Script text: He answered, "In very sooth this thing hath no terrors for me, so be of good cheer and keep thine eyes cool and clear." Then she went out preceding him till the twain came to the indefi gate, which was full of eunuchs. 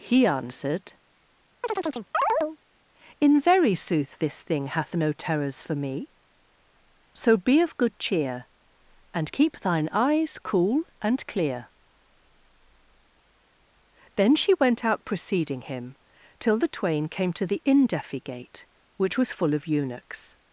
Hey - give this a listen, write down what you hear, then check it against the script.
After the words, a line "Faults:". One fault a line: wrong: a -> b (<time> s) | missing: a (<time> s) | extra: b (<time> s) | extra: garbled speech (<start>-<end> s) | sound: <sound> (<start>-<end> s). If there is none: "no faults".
He answered, "In very sooth this thing hath no terrors for me, so be of good cheer and keep thine eyes cool and clear." Then she went out preceding him till the twain came to the indefi gate, which was full of eunuchs.
Faults:
sound: chirp (1.6-2.6 s)